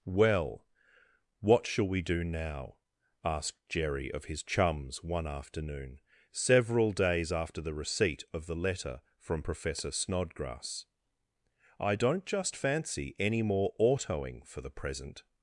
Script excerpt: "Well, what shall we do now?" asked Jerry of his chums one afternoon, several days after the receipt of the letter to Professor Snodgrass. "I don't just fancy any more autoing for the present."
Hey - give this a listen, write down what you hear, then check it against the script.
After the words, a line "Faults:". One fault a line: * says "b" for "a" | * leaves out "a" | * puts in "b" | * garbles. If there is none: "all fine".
"Well, what shall we do now?" asked Jerry of his chums one afternoon, several days after the receipt of the letter from Professor Snodgrass. "I don't just fancy any more autoing for the present."
Faults:
* says "from" for "to"